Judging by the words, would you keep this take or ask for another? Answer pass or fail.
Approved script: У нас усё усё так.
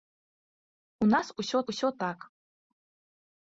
pass